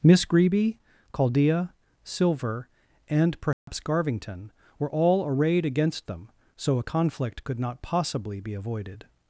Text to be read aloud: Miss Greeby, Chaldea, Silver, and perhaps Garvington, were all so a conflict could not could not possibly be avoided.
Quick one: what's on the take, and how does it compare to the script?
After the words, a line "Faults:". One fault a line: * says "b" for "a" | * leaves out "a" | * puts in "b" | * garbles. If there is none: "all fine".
Miss Greeby, Chaldea, Silver, and perhaps Garvington, were all arrayed against them, so a conflict could not possibly be avoided.
Faults:
* puts in "arrayed against them"
* leaves out "could not"